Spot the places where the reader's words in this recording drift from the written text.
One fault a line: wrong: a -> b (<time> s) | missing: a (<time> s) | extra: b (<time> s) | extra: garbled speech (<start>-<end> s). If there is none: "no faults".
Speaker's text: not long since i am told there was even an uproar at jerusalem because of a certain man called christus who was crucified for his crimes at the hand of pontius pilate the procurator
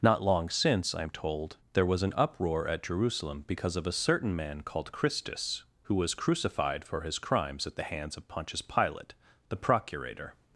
missing: even (2.0 s)
wrong: hand -> hands (7.8 s)